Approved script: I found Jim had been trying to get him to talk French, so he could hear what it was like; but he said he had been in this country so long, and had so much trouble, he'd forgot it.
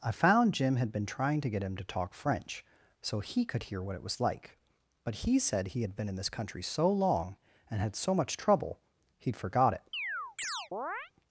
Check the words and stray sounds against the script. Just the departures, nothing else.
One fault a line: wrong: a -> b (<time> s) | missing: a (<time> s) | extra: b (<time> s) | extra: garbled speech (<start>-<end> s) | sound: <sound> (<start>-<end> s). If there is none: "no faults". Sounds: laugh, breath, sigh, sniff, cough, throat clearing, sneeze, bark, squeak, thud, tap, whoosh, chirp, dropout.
sound: chirp (9.9-11.1 s)